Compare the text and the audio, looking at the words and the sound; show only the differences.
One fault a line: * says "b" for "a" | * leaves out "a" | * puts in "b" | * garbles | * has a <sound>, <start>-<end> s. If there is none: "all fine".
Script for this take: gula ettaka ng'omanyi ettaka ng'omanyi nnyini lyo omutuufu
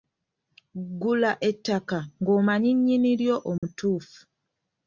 * leaves out "ettaka ng'omanyi"
* has a dropout, 3.6-3.6 s